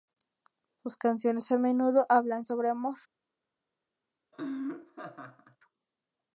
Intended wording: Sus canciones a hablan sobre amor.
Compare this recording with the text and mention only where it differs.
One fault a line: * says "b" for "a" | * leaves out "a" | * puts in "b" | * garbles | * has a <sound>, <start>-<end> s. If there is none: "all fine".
* puts in "menudo"
* has a laugh, 4.3-5.6 s